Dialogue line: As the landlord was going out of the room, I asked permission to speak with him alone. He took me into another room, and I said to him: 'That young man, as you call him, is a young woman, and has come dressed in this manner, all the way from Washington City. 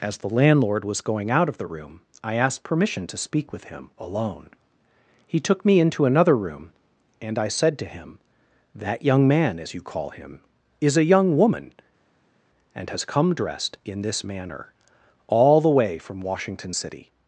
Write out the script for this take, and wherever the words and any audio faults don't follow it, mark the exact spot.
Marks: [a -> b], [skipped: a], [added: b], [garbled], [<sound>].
As the landlord was going out of the room, I asked permission to speak with him alone. He took me into another room, and I said to him: 'That young man, as you call him, is a young woman, and has come dressed in this manner, all the way from Washington City.